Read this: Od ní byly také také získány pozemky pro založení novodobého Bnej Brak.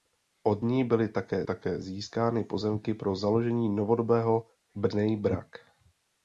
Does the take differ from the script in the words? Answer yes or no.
no